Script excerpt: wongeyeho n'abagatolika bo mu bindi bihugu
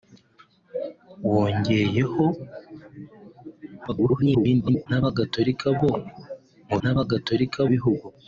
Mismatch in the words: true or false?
true